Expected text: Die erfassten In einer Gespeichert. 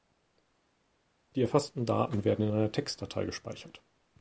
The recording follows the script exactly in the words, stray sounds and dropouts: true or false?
false